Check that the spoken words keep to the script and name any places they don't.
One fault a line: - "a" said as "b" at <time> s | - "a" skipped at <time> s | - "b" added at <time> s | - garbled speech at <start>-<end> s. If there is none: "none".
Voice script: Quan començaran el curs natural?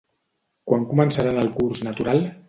none